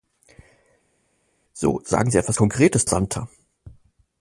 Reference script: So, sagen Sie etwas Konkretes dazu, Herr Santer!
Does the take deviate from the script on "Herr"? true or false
true